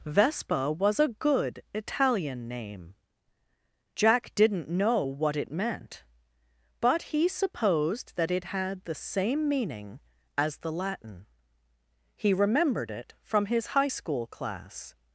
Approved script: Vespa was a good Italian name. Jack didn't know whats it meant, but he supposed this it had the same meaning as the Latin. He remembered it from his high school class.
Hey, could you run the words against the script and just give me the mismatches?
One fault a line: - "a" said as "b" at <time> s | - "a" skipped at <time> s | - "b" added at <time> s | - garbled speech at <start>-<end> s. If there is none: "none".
- "whats" said as "what" at 5.0 s
- "this" said as "that" at 8.1 s